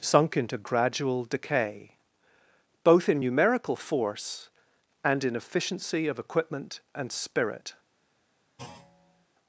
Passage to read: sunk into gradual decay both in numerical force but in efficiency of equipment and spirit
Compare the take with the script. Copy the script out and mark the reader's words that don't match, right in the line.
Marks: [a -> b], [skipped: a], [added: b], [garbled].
sunk into gradual decay both in numerical force [but -> and] in efficiency of equipment and spirit